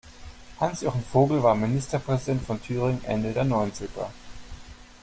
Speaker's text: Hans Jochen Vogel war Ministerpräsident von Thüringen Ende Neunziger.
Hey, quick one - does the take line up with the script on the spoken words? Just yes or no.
no